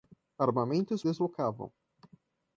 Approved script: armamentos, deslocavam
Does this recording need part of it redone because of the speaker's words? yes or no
no